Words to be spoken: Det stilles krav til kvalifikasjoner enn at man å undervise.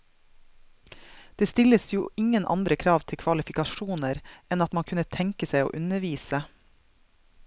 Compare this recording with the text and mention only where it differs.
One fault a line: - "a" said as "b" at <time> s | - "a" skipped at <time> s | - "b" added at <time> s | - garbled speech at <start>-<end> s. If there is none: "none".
- "jo ingen andre" added at 1.9 s
- "kunne tenke seg" added at 4.9 s